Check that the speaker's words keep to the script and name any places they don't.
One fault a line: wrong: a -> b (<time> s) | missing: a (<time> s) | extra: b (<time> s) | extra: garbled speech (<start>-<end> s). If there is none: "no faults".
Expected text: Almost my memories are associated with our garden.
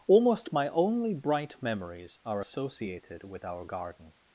extra: only bright (0.7 s)